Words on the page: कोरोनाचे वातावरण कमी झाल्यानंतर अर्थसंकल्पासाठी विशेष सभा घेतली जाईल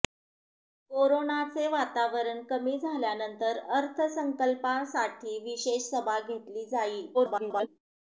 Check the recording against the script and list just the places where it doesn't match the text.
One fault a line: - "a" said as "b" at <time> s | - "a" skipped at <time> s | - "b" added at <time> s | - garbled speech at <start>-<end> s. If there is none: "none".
- garbled speech at 7.1-7.7 s